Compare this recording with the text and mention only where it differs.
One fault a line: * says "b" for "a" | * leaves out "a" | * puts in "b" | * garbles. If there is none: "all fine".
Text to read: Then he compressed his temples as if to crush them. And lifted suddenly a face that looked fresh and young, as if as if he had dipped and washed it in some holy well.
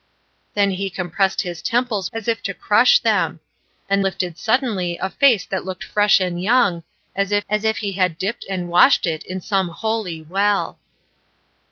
all fine